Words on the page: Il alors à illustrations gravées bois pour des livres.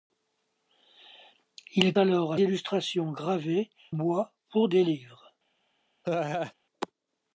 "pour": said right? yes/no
yes